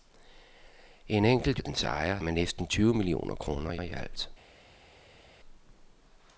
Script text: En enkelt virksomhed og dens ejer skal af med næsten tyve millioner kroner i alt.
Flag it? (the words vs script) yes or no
yes